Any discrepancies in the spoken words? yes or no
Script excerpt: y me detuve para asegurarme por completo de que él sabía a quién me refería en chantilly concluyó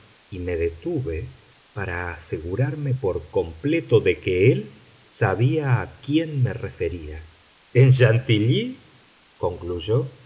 no